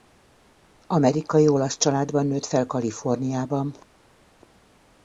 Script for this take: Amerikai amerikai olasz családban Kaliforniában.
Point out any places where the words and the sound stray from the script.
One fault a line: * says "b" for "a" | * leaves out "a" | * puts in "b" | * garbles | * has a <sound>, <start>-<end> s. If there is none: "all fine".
* leaves out "amerikai"
* puts in "nőtt fel"